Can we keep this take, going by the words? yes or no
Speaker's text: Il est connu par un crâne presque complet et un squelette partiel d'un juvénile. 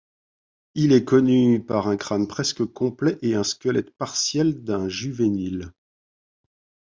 yes